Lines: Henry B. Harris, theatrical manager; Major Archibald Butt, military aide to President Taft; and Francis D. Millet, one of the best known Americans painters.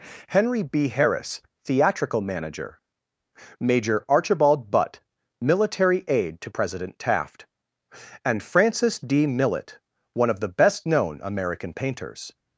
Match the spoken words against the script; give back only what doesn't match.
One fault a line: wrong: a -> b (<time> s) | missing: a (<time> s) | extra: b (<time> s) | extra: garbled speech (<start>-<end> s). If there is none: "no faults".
wrong: Americans -> American (11.2 s)